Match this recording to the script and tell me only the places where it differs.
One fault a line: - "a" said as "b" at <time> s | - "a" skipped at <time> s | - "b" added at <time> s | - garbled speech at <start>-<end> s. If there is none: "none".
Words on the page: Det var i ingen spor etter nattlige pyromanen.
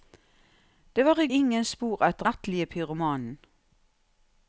none